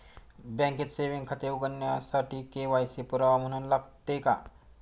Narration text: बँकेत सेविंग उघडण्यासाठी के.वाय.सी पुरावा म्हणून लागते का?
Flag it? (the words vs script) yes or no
yes